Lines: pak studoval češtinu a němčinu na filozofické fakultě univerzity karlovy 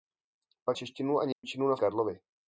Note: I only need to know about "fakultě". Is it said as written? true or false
false